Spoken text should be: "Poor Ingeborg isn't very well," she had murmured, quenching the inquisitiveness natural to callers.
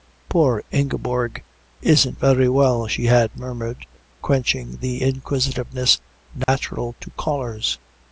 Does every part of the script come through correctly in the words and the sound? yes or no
no